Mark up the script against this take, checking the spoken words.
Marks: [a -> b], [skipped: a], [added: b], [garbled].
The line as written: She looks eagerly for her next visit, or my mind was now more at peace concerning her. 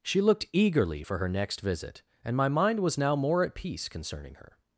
She [looks -> looked] eagerly for her next visit, [or -> and] my mind was now more at peace concerning her.